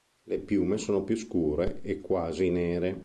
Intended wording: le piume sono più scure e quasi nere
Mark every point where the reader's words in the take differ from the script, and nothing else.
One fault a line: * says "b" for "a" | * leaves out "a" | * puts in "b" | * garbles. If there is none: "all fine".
all fine